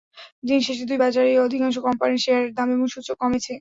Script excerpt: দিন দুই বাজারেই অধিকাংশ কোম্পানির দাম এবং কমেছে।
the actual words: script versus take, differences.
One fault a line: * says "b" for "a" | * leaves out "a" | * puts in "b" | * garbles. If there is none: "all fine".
* puts in "শেষে"
* puts in "শেয়ারের"
* puts in "সূচক"